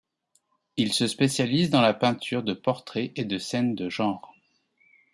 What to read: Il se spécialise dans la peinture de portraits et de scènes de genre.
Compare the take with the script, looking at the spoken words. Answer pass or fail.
pass